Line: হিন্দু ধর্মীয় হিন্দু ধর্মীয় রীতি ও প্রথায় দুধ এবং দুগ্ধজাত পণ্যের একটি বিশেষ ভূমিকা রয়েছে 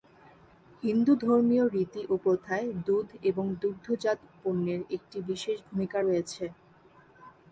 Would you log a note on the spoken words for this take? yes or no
yes